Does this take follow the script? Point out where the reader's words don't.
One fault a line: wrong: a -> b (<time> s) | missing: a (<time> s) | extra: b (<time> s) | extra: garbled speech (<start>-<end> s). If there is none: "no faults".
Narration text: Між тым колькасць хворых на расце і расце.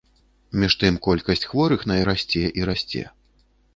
no faults